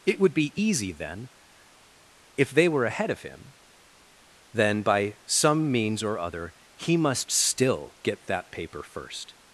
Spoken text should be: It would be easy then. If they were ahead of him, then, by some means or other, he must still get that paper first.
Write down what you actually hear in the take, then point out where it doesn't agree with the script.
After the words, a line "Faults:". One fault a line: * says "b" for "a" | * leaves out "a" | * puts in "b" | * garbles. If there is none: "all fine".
It would be easy then. If they were ahead of him, then, by some means or other, he must still get that paper first.
Faults:
all fine